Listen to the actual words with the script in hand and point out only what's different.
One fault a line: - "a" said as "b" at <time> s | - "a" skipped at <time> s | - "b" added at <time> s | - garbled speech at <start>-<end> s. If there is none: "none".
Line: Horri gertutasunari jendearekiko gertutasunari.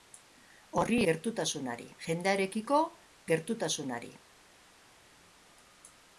none